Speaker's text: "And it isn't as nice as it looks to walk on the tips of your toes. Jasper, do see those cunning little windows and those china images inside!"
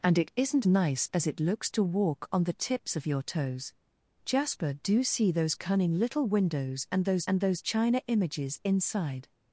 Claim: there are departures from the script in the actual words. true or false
true